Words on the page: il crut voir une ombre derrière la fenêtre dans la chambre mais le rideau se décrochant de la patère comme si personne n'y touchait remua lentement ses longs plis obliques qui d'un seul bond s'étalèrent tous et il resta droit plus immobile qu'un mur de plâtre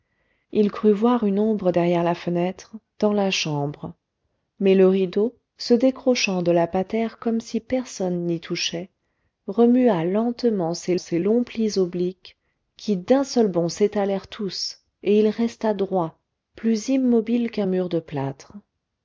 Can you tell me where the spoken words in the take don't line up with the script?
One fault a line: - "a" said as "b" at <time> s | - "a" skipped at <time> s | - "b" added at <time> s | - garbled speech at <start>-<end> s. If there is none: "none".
- "ses" added at 11.0 s